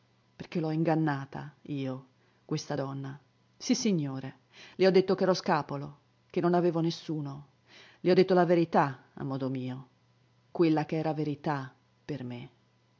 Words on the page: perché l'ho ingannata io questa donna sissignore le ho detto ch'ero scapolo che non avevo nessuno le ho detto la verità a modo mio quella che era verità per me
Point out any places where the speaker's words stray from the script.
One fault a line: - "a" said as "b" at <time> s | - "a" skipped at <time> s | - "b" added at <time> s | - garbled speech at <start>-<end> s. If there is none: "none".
none